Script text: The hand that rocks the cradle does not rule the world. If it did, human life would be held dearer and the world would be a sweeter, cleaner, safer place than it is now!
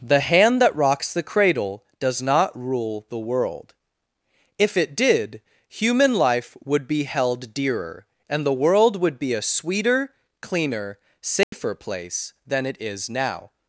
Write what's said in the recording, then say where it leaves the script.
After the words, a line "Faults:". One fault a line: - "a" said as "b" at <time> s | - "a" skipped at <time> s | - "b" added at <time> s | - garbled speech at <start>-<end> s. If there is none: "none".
The hand that rocks the cradle does not rule the world. If it did, human life would be held dearer and the world would be a sweeter, cleaner, safer place than it is now!
Faults:
none